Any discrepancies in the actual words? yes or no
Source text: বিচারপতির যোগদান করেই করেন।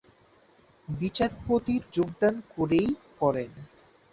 no